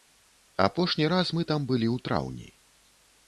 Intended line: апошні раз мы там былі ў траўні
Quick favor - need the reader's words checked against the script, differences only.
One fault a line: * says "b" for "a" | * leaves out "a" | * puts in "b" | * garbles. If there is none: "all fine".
all fine